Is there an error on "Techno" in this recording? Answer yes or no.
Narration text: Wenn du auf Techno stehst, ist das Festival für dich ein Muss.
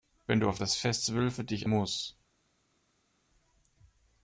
yes